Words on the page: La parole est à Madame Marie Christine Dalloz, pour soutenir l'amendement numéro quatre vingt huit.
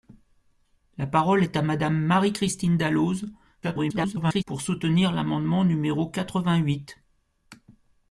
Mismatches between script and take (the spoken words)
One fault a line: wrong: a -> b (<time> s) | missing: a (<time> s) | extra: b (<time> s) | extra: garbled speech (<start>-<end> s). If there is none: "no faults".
extra: garbled speech (3.6-4.4 s)